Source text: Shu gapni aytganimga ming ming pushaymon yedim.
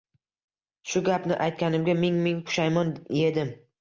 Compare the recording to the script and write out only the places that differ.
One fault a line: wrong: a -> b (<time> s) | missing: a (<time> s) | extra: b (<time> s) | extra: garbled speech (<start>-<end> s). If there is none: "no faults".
no faults